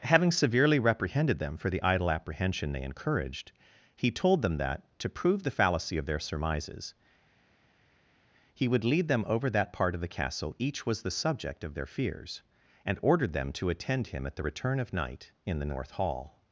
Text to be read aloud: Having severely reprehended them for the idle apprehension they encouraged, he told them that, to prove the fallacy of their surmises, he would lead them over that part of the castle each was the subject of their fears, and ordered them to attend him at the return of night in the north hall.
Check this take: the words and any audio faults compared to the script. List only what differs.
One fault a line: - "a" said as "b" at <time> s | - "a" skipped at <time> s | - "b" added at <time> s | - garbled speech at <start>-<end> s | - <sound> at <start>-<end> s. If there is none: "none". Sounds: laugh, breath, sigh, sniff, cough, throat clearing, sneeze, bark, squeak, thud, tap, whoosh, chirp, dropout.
none